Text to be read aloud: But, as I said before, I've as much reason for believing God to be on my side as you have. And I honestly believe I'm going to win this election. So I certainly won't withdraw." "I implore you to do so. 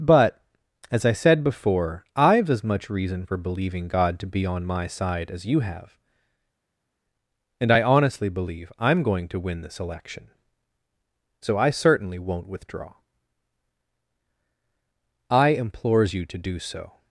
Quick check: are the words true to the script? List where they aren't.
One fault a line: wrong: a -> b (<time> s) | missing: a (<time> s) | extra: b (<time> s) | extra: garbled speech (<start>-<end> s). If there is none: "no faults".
wrong: implore -> implores (15.5 s)